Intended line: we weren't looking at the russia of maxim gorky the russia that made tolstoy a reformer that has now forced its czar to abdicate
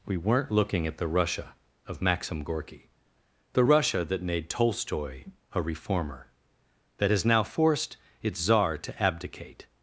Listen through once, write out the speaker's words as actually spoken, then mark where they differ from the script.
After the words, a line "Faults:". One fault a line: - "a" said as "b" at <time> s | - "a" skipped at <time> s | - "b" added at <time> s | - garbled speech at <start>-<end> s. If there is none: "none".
we weren't looking at the russia of maxim gorky the russia that made tolstoy a reformer that has now forced its czar to abdicate
Faults:
none